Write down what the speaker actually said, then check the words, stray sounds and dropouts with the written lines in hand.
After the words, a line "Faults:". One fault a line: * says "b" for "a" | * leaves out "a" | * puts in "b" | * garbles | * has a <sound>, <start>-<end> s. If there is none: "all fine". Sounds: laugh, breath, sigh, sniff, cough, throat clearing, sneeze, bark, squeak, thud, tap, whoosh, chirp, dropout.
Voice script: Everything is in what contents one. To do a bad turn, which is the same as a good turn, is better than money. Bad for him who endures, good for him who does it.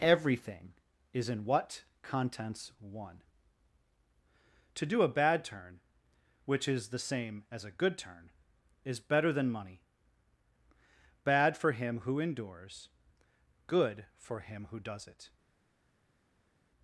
Everything is in what contents one. To do a bad turn, which is the same as a good turn, is better than money. Bad for him who endures, good for him who does it.
Faults:
all fine